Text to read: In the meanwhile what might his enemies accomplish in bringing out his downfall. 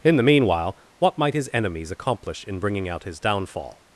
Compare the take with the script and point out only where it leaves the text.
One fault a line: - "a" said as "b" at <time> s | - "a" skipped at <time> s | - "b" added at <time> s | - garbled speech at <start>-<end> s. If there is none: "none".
none